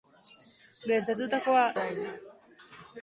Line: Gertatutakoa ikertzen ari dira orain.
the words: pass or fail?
fail